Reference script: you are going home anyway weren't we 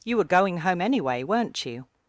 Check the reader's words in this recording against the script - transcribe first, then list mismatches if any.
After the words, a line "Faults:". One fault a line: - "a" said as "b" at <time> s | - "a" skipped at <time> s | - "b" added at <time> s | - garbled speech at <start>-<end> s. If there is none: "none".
you were going home anyway weren't you
Faults:
- "are" said as "were" at 0.2 s
- "we" said as "you" at 1.7 s